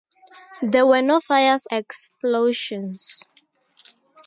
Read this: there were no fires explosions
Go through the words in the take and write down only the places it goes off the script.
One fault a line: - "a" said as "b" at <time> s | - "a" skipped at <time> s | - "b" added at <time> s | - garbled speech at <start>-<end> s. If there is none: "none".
none